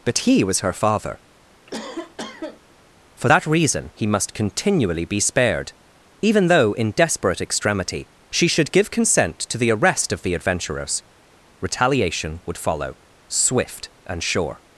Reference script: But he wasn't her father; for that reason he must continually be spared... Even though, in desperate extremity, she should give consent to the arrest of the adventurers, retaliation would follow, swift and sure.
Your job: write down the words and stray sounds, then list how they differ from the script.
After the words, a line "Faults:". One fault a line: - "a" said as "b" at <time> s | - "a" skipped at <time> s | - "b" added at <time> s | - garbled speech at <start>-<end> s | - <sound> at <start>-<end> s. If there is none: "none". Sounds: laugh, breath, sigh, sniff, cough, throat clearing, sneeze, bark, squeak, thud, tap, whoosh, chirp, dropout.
But he was her father; for that reason he must continually be spared... Even though, in desperate extremity, she should give consent to the arrest of the adventurers, retaliation would follow, swift and sure.
Faults:
- "wasn't" said as "was" at 0.4 s
- cough at 1.7-2.8 s